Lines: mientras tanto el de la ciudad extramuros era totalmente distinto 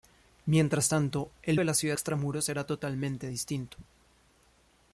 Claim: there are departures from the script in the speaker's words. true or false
false